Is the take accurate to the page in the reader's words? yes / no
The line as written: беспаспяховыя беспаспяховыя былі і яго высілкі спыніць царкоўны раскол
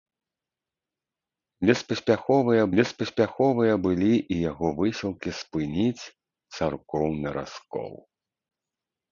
yes